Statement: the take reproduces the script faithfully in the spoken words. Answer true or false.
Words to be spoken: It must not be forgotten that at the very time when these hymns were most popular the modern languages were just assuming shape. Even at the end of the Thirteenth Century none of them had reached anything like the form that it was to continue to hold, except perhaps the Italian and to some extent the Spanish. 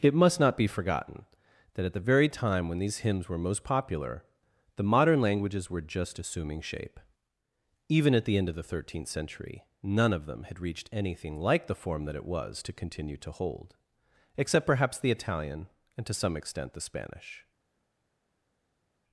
true